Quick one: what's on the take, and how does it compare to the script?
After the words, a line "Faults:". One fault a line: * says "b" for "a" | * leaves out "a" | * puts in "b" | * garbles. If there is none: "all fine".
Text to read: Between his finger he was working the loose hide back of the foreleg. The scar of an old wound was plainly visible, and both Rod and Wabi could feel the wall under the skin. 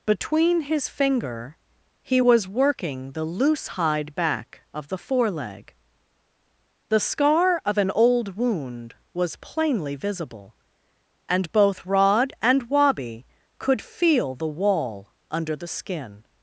Between his finger he was working the loose hide back of the foreleg. The scar of an old wound was plainly visible, and both Rod and Wabi could feel the wall under the skin.
Faults:
all fine